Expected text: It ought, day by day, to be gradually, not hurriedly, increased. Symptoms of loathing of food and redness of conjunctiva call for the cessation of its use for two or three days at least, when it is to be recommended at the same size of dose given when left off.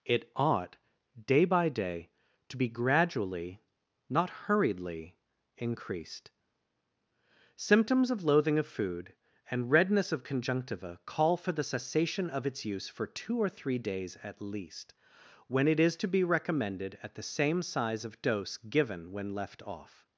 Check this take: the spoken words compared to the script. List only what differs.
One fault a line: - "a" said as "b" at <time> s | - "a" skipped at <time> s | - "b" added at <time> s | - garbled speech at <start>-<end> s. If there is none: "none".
none